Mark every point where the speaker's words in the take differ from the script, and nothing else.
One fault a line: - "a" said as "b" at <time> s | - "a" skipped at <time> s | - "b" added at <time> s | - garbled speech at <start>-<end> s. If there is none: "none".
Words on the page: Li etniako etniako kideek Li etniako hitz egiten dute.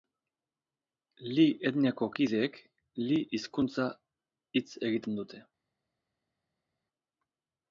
- "etniako" skipped at 2.1 s
- "etniako" said as "hizkuntza" at 3.3 s